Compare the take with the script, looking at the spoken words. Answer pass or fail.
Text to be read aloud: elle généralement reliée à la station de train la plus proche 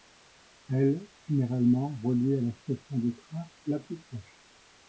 pass